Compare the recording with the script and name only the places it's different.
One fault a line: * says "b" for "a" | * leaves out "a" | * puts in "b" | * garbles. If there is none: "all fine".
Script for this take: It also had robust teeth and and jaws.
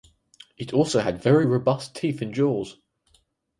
* puts in "very"
* leaves out "and"